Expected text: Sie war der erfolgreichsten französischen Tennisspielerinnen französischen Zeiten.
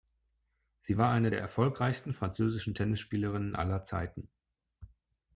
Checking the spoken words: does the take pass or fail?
fail